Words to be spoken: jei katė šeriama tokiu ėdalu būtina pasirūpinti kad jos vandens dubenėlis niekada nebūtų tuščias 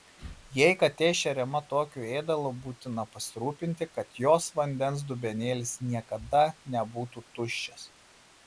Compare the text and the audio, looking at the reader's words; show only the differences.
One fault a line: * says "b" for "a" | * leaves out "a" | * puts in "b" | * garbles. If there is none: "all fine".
all fine